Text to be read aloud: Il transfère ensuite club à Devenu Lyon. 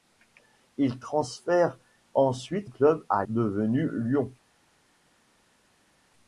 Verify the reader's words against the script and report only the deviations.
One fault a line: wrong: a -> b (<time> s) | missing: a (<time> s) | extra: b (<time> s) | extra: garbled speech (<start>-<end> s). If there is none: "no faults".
no faults